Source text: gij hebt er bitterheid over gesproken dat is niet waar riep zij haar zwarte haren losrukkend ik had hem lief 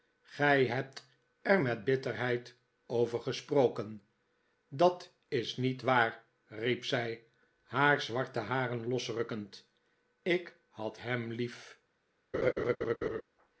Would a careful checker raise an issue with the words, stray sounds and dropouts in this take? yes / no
yes